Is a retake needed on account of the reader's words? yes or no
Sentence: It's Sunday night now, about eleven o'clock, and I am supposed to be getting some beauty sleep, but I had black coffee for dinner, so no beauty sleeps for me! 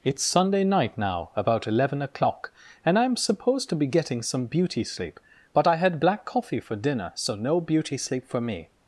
yes